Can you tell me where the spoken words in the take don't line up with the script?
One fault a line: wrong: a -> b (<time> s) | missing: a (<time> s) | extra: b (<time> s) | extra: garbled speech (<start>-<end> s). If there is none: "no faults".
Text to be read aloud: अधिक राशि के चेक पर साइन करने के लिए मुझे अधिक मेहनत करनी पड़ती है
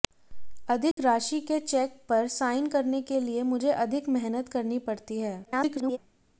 extra: garbled speech (5.4-6.0 s)